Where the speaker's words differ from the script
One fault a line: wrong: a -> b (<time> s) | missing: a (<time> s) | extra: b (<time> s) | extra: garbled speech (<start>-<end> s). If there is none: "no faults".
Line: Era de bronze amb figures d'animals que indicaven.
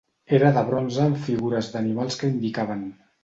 no faults